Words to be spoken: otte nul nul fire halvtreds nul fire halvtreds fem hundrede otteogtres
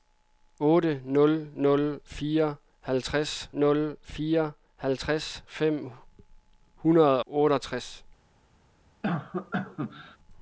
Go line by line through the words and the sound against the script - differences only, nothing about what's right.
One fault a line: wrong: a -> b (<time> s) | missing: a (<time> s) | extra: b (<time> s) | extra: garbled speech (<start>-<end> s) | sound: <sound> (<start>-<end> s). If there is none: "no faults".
sound: cough (9.0-10.2 s)